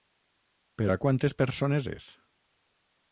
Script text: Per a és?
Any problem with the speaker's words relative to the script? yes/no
yes